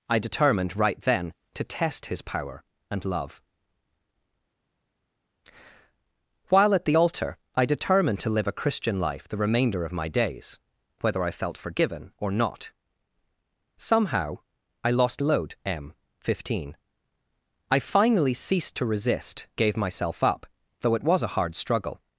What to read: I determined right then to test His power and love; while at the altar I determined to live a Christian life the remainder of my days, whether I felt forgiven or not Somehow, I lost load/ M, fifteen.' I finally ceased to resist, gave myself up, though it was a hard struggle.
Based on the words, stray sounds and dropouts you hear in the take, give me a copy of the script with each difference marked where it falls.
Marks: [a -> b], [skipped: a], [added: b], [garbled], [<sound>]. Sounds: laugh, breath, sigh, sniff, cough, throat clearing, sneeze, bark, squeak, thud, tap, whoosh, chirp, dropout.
I determined right then to test His power and love; while at the altar I determined to live a Christian life the remainder of my days, whether I felt forgiven or not Somehow, I lost load/ M, fifteen.' I finally ceased to resist, gave myself up, though it was a hard struggle.